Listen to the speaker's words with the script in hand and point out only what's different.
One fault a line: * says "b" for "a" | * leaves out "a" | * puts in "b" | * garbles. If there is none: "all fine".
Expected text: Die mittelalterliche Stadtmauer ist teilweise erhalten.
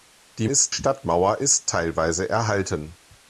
* says "ist" for "mittelalterliche"